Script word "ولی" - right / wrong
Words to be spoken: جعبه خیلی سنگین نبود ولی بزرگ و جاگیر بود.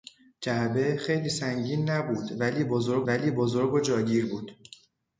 right